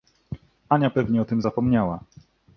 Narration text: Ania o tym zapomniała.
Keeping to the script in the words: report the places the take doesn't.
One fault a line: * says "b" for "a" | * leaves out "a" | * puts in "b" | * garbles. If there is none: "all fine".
* puts in "pewnie"